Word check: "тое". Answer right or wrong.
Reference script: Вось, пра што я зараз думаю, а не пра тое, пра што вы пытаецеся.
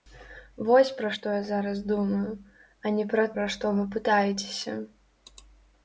wrong